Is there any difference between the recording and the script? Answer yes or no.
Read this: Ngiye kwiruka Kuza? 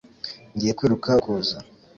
no